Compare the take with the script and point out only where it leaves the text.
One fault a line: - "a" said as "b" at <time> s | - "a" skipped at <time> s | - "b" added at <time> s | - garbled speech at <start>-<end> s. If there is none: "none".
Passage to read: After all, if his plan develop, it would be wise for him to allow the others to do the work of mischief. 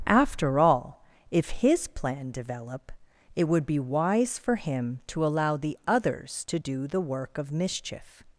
none